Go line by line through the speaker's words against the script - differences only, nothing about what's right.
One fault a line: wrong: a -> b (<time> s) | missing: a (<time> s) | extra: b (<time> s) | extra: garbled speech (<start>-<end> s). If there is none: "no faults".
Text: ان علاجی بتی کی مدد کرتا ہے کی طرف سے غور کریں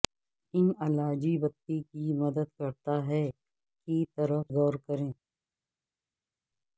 missing: سے (4.5 s)